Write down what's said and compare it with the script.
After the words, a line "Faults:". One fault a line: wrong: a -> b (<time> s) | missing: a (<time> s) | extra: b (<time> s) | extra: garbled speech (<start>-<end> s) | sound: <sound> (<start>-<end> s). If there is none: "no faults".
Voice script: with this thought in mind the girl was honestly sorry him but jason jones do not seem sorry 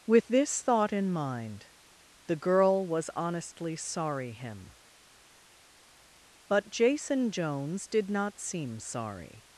with this thought in mind the girl was honestly sorry him but jason jones did not seem sorry
Faults:
wrong: do -> did (7.9 s)